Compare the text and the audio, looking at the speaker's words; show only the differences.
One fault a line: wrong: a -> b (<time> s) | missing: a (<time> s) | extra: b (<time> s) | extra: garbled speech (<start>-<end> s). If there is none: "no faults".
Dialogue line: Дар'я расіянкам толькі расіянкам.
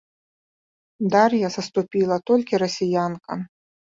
wrong: расіянкам -> саступіла (1.5 s)